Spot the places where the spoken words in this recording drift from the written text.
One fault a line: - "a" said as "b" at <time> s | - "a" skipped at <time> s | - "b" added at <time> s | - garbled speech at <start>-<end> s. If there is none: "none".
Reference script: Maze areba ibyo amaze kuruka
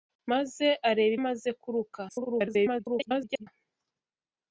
- "ibyo" skipped at 1.1 s
- garbled speech at 2.1-3.5 s